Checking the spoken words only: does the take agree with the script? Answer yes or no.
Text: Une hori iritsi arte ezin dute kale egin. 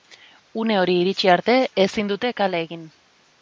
yes